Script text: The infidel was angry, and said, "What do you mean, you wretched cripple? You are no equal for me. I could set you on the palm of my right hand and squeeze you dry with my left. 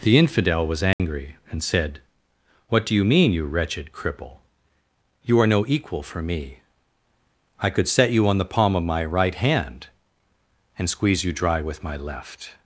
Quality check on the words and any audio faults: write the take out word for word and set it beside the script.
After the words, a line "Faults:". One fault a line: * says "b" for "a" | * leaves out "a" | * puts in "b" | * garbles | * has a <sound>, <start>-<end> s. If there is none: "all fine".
The infidel was angry, and said, "What do you mean, you wretched cripple? You are no equal for me. I could set you on the palm of my right hand and squeeze you dry with my left.
Faults:
* has a dropout, 0.9-1.0 s